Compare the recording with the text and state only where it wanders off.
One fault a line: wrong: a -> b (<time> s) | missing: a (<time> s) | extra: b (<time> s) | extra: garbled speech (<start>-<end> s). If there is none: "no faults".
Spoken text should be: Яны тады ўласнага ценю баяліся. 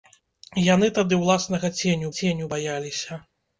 extra: ценю (2.2 s)